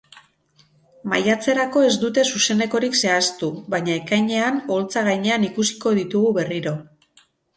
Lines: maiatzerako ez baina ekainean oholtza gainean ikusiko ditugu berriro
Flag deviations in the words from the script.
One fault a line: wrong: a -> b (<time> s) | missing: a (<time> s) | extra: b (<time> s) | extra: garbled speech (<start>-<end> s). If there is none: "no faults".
extra: dute zuzenekorik zehaztu (2.0 s)